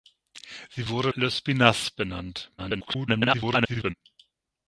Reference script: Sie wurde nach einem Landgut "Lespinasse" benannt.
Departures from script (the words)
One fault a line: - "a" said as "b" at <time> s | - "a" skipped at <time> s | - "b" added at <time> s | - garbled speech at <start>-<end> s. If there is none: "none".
- "nach einem Landgut" skipped at 1.1 s
- garbled speech at 2.6-3.9 s